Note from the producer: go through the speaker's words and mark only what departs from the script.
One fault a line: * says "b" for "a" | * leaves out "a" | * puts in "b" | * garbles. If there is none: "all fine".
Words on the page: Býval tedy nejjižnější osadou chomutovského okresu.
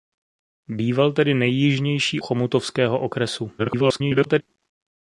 * leaves out "osadou"
* garbles